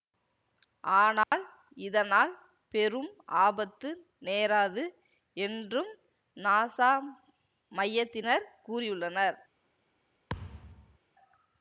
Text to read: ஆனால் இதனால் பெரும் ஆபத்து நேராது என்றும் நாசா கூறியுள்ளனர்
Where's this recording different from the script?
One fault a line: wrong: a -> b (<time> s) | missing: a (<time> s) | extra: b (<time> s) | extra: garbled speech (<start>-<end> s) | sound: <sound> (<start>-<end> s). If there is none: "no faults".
sound: dropout (1.2-1.3 s)
extra: மையத்தினர் (7.7 s)
sound: thud (10.3-11.0 s)